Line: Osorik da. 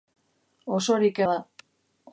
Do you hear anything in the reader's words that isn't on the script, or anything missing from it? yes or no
no